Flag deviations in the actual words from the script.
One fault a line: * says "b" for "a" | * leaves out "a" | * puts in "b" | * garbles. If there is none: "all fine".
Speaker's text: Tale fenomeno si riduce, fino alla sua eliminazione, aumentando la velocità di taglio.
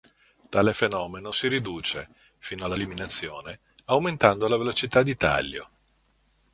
* leaves out "sua"